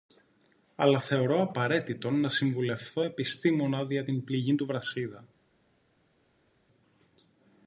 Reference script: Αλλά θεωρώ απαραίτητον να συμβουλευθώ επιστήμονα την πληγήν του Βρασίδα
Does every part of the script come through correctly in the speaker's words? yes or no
no